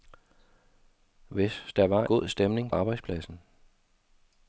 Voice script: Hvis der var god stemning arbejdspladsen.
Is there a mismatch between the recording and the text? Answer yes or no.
no